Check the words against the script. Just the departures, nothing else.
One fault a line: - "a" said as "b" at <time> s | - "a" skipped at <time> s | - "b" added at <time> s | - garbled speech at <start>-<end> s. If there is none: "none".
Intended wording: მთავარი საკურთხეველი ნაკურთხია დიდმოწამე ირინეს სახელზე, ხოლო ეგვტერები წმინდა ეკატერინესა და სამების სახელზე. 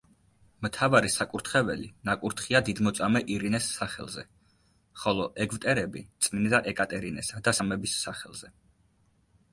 none